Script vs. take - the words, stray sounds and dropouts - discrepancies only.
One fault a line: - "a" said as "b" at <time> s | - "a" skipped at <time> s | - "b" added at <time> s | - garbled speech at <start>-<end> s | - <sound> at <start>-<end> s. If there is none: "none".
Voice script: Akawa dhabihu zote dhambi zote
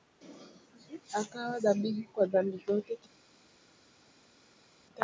- "zote" said as "kwa" at 2.1 s